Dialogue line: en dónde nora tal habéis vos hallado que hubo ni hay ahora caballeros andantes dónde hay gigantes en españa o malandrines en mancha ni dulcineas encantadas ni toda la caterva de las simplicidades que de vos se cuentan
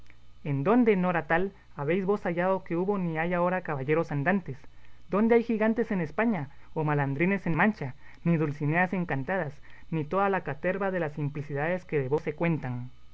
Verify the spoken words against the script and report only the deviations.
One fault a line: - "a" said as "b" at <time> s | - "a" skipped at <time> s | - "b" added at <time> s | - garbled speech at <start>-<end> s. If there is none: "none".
none